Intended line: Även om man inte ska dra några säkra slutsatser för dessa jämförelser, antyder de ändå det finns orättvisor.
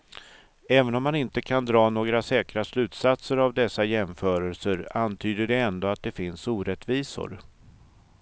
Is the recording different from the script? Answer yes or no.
yes